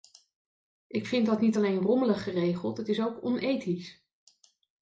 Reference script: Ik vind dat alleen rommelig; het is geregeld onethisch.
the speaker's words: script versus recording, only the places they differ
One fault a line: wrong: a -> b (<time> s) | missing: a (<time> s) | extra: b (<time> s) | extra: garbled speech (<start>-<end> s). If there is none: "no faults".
extra: niet (1.4 s)
extra: geregeld (2.2 s)
wrong: geregeld -> ook (3.0 s)